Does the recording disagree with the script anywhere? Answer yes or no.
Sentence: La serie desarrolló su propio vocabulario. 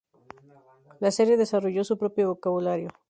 no